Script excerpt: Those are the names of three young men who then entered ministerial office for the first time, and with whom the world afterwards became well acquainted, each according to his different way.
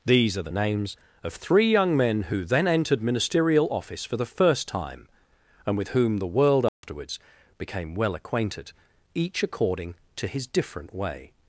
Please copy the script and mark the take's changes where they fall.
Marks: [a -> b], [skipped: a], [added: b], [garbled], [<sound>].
[Those -> These] are the names of three young men who then entered ministerial office for the first time, and with whom the world afterwards [dropout] became well acquainted, each according to his different way.